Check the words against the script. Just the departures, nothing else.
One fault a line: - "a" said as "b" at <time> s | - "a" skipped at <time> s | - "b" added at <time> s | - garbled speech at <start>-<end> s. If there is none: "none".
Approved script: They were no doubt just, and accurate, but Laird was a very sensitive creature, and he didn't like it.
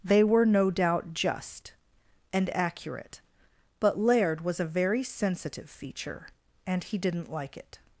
- "creature" said as "feature" at 5.7 s